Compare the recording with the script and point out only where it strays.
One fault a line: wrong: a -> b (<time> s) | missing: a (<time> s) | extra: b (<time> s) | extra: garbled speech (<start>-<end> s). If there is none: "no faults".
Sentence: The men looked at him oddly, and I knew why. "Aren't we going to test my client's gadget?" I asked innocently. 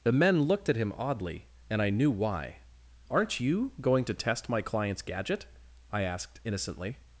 wrong: we -> you (3.4 s)